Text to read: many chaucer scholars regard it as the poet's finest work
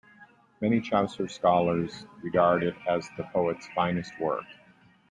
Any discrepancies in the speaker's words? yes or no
no